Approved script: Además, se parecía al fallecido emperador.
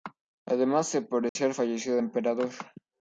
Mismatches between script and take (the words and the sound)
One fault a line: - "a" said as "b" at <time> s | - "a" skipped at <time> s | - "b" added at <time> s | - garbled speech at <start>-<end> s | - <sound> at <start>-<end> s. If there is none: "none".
- dropout at 1.3-1.4 s